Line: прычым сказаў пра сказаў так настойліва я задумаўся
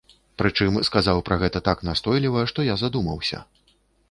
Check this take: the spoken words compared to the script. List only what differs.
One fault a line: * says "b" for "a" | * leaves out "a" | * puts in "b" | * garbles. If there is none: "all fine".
* says "гэта" for "сказаў"
* puts in "што"